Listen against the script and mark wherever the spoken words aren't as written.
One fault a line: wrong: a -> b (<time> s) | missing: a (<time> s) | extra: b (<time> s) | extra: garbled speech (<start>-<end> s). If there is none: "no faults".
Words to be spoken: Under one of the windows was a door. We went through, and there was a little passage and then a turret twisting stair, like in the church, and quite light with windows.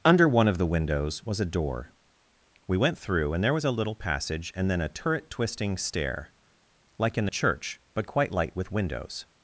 wrong: and -> but (8.0 s)